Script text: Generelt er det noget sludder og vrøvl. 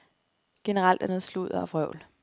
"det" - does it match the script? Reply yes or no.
no